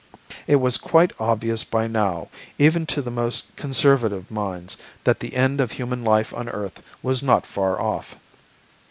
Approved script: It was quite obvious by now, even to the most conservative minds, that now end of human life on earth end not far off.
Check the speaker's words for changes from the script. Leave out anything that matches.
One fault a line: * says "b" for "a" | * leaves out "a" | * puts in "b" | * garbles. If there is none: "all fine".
* says "the" for "now"
* says "was" for "end"